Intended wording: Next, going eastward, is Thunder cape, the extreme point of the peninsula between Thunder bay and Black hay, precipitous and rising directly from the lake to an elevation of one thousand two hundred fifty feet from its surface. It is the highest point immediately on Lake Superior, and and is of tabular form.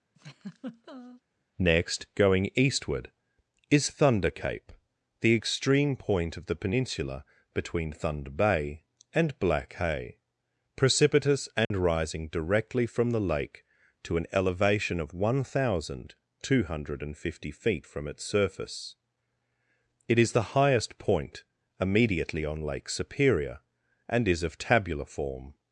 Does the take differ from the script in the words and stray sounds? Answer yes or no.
yes